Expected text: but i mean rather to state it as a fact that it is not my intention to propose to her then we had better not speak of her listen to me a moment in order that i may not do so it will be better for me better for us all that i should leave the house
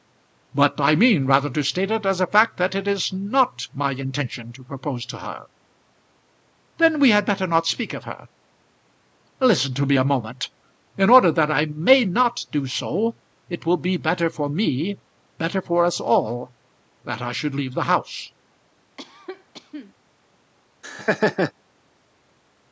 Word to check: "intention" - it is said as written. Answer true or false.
true